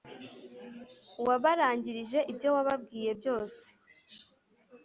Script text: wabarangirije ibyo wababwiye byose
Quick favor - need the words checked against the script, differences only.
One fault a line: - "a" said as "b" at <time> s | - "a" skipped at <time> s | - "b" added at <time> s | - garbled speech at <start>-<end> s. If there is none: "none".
none